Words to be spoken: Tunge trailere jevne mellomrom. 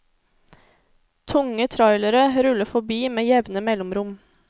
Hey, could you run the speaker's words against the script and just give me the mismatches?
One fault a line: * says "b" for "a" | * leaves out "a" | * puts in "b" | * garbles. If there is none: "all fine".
* puts in "ruller forbi med"